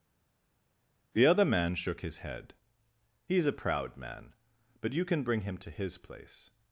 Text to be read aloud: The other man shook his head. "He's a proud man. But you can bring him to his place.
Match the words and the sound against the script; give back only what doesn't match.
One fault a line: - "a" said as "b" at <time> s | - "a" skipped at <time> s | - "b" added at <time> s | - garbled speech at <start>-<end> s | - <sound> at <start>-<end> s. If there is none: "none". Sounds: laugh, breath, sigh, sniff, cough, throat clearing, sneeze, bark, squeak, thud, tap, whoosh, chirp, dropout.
none